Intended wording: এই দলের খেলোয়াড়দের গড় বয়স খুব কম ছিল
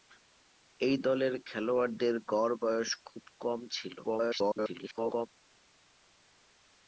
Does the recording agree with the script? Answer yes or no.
no